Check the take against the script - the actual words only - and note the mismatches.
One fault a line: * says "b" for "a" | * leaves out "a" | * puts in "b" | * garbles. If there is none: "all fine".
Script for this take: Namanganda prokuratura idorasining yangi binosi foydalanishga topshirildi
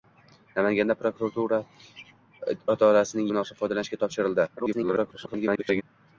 * leaves out "yangi"
* garbles